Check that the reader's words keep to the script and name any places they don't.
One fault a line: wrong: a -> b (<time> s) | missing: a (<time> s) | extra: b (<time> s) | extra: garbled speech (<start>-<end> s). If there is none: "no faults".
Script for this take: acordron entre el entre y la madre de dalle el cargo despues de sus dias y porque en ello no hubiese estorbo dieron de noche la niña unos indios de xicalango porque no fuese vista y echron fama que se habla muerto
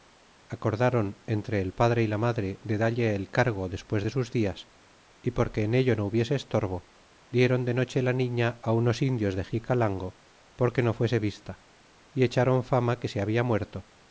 wrong: entre -> padre (1.8 s)